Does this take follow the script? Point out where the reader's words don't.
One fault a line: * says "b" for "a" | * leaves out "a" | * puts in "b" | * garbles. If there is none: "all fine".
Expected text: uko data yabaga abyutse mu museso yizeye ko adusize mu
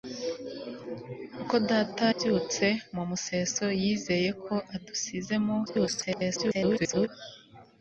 * leaves out "yabaga"
* garbles